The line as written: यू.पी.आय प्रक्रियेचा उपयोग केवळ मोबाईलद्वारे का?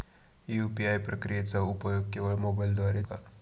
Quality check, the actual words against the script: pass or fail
pass